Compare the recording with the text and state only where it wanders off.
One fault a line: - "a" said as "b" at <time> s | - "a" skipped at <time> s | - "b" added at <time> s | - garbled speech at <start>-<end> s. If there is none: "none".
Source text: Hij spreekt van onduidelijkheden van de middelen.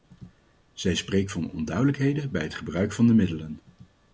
- "Hij" said as "Zij" at 0.7 s
- "bij het gebruik" added at 2.3 s